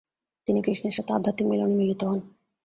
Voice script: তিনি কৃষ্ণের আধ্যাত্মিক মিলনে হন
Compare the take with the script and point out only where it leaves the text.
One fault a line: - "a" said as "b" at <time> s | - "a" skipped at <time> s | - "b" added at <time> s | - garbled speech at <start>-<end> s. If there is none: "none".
- "সাথে" added at 0.9 s
- "মিলিত" added at 1.8 s